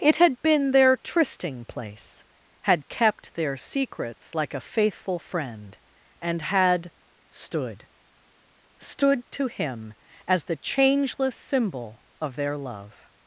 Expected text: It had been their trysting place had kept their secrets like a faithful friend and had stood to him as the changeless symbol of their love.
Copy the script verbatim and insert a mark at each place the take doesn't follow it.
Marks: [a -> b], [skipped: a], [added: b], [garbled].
It had been their trysting place had kept their secrets like a faithful friend and had stood [added: stood] to him as the changeless symbol of their love.